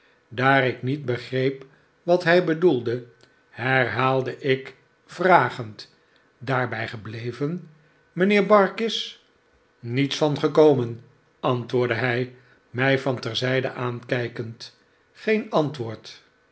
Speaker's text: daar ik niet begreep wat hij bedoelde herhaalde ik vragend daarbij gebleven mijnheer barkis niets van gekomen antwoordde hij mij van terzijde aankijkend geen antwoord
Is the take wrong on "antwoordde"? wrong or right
right